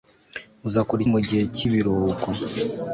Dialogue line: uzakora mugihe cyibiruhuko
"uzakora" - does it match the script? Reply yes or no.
yes